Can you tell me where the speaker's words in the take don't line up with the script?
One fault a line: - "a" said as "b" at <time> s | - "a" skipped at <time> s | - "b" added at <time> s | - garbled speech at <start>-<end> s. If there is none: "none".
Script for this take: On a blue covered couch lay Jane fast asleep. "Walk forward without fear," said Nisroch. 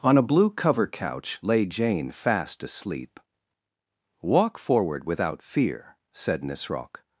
- "covered" said as "cover" at 0.5 s